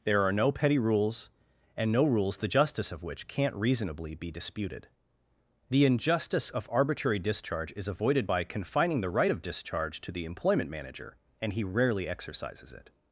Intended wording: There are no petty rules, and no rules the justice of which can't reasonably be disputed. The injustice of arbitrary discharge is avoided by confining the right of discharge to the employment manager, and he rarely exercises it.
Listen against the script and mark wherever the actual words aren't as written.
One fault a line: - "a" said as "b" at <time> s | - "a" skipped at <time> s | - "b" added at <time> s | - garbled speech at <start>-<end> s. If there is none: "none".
none